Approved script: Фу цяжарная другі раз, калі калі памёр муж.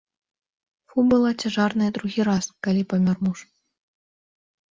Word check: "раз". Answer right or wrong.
right